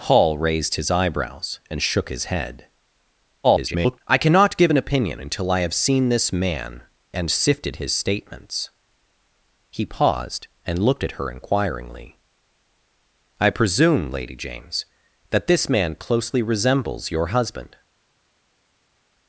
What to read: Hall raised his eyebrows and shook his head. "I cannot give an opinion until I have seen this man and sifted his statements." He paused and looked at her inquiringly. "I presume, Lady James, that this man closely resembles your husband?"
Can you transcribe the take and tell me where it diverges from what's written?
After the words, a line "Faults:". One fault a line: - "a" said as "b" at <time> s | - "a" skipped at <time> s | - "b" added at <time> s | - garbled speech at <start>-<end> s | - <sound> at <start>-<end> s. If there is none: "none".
Hall raised his eyebrows and shook his head. [garbled] "I cannot give an opinion until I have seen this man and sifted his statements." He paused and looked at her inquiringly. "I presume, Lady James, that this man closely resembles your husband?"
Faults:
- garbled speech at 3.4-4.0 s